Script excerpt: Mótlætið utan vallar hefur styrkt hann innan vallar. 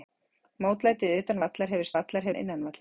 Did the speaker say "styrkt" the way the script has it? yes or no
no